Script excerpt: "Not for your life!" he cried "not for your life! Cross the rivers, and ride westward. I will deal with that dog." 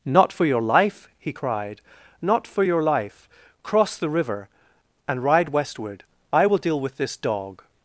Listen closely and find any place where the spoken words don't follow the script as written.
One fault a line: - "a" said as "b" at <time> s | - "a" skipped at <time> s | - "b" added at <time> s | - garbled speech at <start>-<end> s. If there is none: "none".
- "rivers" said as "river" at 4.1 s
- "that" said as "this" at 7.0 s